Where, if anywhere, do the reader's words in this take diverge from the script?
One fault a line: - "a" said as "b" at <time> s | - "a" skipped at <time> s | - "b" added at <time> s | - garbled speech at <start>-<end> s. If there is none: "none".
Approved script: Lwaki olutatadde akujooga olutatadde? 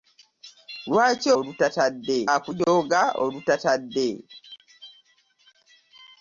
none